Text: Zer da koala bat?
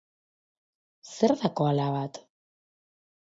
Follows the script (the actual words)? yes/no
yes